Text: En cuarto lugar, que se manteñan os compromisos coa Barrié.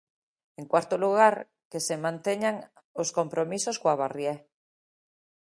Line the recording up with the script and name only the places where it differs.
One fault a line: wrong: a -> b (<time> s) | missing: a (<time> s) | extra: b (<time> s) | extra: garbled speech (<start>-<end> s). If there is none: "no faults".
no faults